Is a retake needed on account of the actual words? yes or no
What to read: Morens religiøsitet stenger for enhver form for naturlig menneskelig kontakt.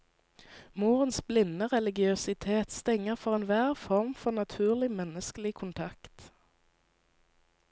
yes